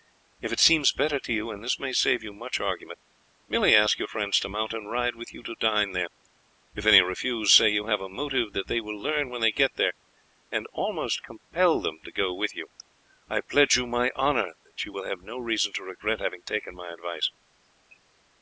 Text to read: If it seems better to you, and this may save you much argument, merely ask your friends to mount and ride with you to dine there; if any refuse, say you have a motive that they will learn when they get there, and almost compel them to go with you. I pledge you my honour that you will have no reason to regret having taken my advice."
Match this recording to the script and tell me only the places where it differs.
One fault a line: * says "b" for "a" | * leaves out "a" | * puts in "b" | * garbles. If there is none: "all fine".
all fine